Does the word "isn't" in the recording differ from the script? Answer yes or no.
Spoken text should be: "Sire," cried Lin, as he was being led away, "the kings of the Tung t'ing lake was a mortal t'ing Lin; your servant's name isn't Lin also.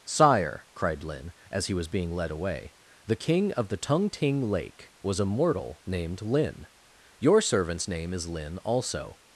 yes